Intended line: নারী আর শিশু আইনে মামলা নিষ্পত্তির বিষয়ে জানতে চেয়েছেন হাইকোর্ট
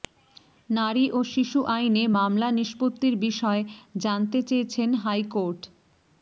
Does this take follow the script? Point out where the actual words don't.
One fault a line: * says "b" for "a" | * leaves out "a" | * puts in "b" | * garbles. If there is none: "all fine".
* says "ও" for "আর"